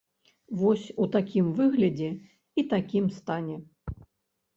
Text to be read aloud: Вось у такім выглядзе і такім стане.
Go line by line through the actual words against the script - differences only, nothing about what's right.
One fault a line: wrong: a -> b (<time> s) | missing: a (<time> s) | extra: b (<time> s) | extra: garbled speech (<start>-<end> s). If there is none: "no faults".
no faults